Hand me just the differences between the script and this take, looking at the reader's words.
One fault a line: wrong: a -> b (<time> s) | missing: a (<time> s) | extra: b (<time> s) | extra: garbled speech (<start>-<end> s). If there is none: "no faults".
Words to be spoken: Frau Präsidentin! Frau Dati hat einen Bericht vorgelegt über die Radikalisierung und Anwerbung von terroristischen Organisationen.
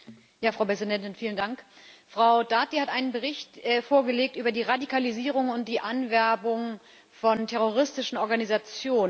extra: die (5.7 s)